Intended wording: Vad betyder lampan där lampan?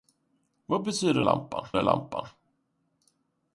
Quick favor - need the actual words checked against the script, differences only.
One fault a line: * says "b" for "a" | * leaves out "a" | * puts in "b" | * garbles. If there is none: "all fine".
all fine